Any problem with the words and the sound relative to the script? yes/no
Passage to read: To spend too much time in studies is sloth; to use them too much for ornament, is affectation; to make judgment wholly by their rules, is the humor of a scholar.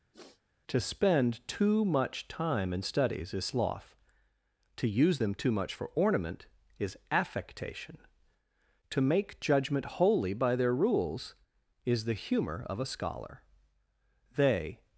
yes